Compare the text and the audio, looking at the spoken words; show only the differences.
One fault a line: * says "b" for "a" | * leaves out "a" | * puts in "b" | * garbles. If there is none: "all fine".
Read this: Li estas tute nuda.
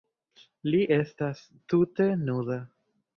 all fine